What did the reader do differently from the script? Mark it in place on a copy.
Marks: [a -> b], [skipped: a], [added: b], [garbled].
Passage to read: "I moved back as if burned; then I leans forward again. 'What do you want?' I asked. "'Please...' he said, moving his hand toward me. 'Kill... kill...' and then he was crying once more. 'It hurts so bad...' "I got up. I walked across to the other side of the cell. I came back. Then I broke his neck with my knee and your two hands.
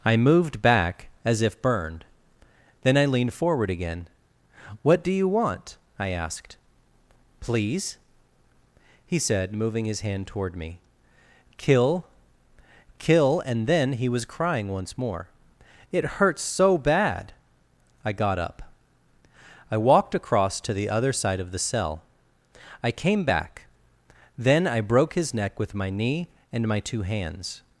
"I moved back as if burned; then I [leans -> leaned] forward again. 'What do you want?' I asked. "'Please...' he said, moving his hand toward me. 'Kill... kill...' and then he was crying once more. 'It hurts so bad...' "I got up. I walked across to the other side of the cell. I came back. Then I broke his neck with my knee and [your -> my] two hands.